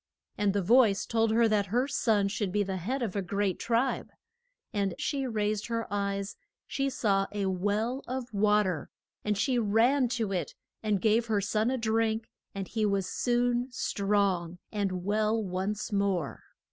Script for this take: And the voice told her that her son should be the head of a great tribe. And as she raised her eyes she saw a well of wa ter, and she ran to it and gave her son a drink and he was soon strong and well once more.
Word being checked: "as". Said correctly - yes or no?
no